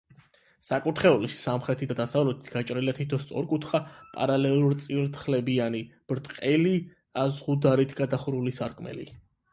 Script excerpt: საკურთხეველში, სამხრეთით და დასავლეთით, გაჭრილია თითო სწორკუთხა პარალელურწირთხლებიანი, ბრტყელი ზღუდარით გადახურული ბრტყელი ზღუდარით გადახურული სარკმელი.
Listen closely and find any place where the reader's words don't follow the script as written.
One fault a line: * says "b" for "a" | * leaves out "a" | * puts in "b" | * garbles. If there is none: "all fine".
* leaves out "ბრტყელი ზღუდარით გადახურული"